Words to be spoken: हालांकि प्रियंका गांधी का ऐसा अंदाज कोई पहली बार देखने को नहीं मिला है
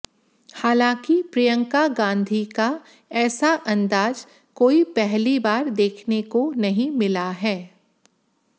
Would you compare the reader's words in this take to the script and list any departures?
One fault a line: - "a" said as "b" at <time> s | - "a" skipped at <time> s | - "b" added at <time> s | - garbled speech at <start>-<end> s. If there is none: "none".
none